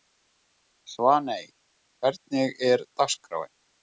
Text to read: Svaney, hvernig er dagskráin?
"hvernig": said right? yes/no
yes